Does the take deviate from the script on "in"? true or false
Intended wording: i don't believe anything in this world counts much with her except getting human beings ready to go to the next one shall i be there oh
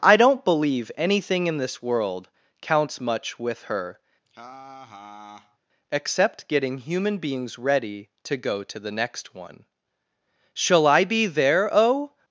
false